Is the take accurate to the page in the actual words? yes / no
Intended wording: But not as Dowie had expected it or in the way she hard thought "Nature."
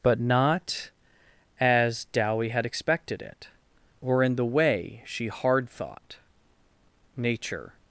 yes